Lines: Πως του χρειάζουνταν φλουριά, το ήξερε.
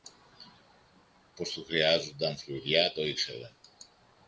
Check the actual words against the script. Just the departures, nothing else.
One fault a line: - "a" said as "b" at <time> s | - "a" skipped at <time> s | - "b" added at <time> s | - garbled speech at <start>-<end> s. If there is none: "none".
none